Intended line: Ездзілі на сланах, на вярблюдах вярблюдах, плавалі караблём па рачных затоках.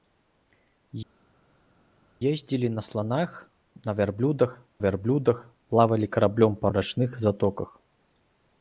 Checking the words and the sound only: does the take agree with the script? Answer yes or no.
yes